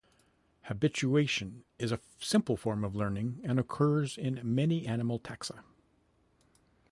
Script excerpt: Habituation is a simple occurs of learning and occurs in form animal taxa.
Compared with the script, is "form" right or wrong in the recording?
wrong